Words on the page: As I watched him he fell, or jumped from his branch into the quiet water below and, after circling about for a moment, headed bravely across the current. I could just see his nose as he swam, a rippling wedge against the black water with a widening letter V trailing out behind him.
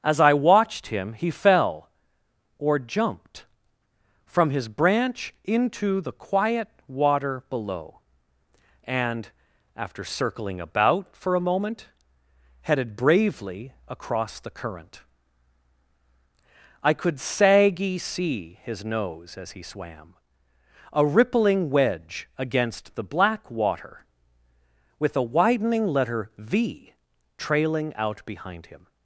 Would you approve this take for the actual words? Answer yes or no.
no